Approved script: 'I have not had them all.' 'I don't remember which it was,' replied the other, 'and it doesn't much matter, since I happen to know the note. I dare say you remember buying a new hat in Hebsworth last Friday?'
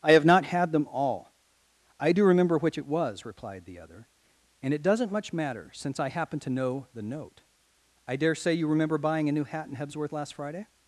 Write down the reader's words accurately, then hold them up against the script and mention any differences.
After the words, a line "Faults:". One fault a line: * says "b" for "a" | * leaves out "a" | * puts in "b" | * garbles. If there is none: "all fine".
'I have not had them all.' 'I do remember which it was,' replied the other, 'and it doesn't much matter, since I happen to know the note. I dare say you remember buying a new hat in Hebsworth last Friday?'
Faults:
* says "do" for "don't"